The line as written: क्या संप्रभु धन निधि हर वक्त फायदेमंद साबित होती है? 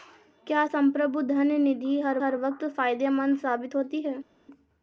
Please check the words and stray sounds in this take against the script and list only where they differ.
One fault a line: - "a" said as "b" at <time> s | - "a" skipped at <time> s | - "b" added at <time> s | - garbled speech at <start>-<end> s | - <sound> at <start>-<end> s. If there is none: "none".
- "हर" added at 2.2 s